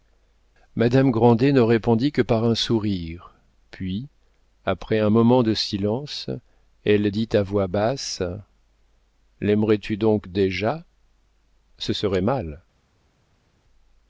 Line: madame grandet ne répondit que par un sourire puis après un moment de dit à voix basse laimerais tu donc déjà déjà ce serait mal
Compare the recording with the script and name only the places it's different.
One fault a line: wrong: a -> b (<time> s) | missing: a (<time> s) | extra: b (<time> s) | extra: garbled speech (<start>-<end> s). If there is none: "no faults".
extra: silence elle (5.5 s)
missing: déjà (10.8 s)